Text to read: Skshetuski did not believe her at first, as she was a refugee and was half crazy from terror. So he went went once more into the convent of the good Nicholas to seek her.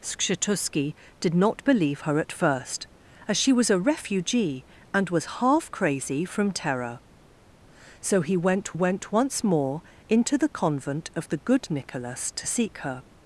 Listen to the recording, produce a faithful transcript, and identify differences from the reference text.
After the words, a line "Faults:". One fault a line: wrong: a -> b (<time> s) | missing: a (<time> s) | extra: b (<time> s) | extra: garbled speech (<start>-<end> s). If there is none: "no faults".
Skshetuski did not believe her at first, as she was a refugee and was half crazy from terror. So he went went once more into the convent of the good Nicholas to seek her.
Faults:
no faults